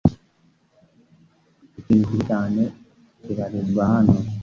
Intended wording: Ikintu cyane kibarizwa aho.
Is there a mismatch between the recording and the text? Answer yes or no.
yes